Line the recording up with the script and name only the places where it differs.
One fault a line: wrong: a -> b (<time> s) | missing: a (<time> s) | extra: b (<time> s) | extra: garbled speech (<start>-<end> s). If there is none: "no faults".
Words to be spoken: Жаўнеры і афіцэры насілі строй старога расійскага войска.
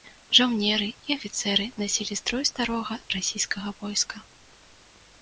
no faults